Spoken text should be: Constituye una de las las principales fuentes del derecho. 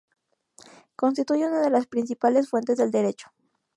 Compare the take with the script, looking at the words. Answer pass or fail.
fail